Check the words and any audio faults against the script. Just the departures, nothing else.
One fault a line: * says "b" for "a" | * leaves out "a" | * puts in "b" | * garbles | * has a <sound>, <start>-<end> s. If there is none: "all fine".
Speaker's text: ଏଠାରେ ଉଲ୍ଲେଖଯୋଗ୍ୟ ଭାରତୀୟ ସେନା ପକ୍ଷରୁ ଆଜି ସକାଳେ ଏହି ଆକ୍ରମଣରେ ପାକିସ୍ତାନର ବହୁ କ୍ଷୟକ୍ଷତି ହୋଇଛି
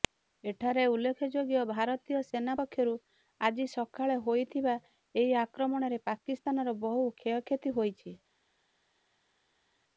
* puts in "ହୋଇଥିବା"